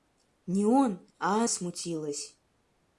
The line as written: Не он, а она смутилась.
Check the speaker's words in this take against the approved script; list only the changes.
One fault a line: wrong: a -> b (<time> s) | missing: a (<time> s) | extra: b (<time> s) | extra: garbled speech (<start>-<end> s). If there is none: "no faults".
missing: она (1.4 s)